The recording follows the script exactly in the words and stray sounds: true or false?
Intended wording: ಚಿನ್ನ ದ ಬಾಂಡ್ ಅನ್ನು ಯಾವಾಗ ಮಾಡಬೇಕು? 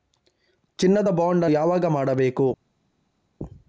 false